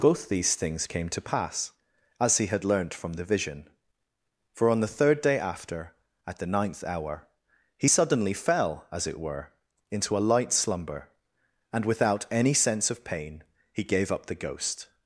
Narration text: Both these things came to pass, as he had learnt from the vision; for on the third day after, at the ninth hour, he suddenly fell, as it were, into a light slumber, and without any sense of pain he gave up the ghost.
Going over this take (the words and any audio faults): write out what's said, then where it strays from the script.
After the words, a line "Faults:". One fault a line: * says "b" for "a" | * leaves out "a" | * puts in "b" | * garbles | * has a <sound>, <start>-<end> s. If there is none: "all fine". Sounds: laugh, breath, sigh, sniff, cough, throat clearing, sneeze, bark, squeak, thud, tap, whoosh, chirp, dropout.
Both these things came to pass, as he had learnt from the vision; for on the third day after, at the ninth hour, he suddenly fell, as it were, into a light slumber, and without any sense of pain he gave up the ghost.
Faults:
all fine